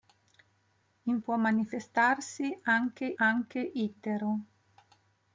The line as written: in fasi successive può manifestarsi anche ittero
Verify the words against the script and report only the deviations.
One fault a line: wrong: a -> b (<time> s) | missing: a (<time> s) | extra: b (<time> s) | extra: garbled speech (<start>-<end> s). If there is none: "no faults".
missing: fasi successive (1.2 s)
extra: anche (3.2 s)